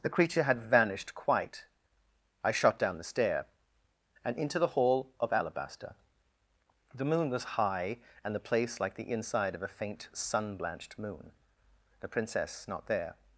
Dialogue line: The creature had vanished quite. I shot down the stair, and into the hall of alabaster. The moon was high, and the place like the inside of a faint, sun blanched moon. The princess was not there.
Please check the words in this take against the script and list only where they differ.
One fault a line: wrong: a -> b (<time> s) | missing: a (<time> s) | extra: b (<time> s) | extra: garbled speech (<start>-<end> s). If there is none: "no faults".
missing: was (12.6 s)